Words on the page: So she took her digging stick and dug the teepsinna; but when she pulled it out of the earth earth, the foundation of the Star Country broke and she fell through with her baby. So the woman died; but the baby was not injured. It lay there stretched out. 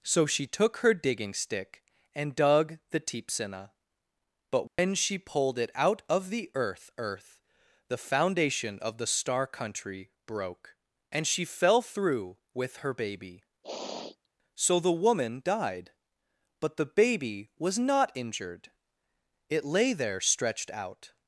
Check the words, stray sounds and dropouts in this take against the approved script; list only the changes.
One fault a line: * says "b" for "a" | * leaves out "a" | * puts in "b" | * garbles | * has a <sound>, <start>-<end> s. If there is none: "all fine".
* has a dropout, 4.7-4.8 s
* has a sniff, 13.6-14.3 s